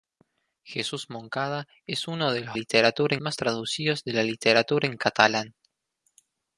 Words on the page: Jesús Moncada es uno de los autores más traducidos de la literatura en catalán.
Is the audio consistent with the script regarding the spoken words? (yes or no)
no